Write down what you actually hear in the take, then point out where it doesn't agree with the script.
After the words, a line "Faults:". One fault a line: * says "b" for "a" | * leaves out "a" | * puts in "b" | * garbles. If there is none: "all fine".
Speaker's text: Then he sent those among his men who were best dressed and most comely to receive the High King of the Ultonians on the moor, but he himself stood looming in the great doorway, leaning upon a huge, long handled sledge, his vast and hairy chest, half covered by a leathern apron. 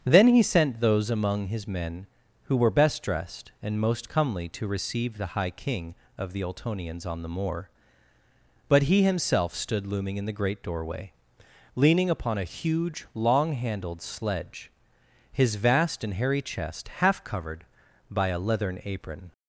Then he sent those among his men who were best dressed and most comely to receive the High King of the Ultonians on the moor, but he himself stood looming in the great doorway, leaning upon a huge, long handled sledge, his vast and hairy chest, half covered by a leathern apron.
Faults:
all fine